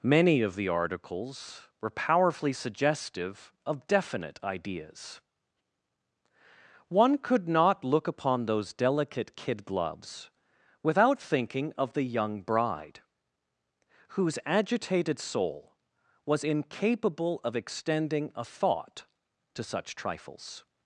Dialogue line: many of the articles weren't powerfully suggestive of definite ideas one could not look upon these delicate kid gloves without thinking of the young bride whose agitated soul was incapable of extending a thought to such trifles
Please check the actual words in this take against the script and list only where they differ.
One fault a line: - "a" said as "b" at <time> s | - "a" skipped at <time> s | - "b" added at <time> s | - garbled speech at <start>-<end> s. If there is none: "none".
- "weren't" said as "were" at 1.8 s
- "these" said as "those" at 8.5 s